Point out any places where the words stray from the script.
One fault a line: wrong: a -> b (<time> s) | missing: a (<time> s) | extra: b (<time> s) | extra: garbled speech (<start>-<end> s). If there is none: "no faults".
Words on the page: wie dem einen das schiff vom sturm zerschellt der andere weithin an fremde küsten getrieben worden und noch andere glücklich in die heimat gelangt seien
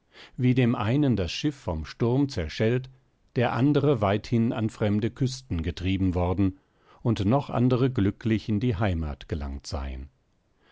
no faults